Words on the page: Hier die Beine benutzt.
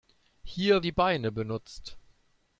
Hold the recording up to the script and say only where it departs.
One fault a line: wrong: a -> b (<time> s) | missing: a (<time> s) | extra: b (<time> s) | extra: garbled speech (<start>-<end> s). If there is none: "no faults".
no faults